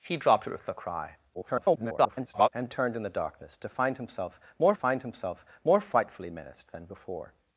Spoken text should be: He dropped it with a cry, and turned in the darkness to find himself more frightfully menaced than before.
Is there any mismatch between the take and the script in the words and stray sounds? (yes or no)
yes